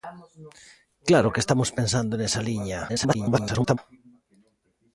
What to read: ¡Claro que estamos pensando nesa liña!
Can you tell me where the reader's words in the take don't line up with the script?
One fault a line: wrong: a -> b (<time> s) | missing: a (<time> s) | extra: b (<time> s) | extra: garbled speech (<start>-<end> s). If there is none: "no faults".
extra: garbled speech (2.9-3.8 s)